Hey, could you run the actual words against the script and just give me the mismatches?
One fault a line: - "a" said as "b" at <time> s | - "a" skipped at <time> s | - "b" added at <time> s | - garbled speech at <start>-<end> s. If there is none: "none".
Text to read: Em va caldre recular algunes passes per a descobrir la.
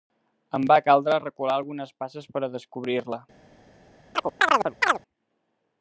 none